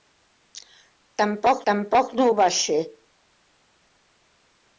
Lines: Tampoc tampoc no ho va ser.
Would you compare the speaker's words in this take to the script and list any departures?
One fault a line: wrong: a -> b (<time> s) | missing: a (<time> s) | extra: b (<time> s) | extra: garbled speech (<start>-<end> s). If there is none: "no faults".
no faults